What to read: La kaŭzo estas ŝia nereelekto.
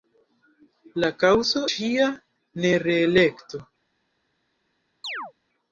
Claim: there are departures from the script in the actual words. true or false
true